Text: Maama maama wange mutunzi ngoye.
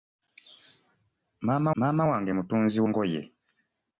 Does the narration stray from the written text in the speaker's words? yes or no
no